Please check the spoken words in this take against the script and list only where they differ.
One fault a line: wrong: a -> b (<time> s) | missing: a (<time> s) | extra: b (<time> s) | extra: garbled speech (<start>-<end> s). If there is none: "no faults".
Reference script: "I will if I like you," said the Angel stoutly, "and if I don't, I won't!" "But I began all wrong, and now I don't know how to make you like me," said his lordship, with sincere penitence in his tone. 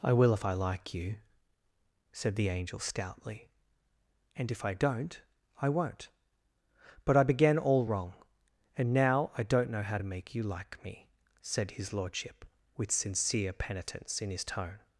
no faults